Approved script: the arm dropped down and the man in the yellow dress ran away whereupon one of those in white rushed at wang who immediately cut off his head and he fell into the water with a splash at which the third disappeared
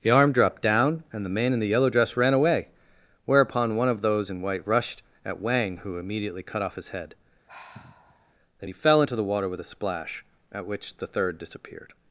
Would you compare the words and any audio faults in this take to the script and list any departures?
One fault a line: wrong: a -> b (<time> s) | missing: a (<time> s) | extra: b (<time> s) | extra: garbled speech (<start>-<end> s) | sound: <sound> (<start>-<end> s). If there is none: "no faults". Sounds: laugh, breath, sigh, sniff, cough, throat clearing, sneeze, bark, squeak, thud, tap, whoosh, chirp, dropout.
sound: sigh (7.5-8.3 s)
wrong: and -> then (8.6 s)